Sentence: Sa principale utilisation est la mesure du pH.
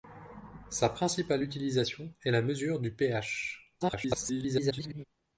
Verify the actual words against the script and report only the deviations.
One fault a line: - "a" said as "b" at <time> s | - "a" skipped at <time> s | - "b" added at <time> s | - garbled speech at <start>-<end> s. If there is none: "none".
- garbled speech at 3.8-5.0 s